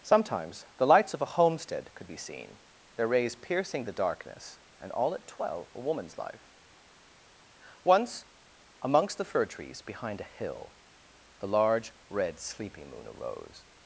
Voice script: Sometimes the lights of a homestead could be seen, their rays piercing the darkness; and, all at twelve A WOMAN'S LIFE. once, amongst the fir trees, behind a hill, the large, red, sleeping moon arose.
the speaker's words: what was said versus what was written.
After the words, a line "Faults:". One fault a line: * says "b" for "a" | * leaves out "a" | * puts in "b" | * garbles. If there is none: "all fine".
Sometimes the lights of a homestead could be seen, their rays piercing the darkness; and, all at twelve A WOMAN'S LIFE. once, amongst the fir trees, behind a hill, the large, red, sleeping moon arose.
Faults:
all fine